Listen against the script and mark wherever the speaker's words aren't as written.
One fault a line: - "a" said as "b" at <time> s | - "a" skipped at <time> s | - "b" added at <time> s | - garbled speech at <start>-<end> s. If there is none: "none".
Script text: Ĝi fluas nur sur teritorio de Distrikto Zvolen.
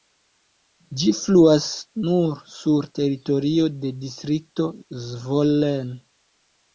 none